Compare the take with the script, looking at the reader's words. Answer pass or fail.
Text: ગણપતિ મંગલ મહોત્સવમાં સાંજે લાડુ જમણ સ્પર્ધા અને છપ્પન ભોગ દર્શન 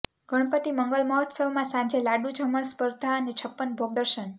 pass